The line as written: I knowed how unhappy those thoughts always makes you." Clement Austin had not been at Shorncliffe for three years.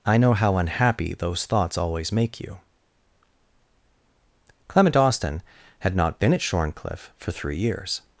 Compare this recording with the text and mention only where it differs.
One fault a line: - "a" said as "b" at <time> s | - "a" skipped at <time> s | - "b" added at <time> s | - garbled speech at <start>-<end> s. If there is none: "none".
- "knowed" said as "know" at 0.2 s
- "makes" said as "make" at 2.1 s